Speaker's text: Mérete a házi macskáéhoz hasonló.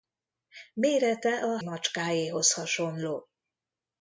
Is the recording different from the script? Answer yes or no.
yes